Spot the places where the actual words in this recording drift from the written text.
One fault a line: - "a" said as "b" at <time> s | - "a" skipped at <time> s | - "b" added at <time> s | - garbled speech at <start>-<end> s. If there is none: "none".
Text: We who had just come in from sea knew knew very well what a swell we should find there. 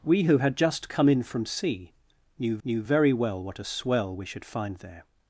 none